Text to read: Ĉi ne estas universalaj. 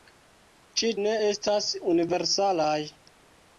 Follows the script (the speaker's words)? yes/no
yes